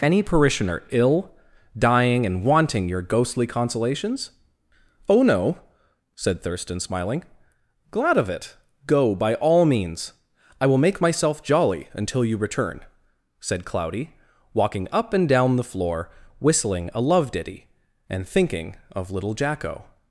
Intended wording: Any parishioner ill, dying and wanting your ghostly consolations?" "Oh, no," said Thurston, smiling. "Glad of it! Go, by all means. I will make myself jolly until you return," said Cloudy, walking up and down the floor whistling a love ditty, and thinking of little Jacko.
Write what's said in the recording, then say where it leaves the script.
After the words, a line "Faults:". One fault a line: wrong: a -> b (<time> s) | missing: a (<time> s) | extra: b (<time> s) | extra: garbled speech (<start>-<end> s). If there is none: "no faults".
Any parishioner ill, dying and wanting your ghostly consolations?" "Oh, no," said Thurston, smiling. "Glad of it! Go, by all means. I will make myself jolly until you return," said Cloudy, walking up and down the floor whistling a love ditty, and thinking of little Jacko.
Faults:
no faults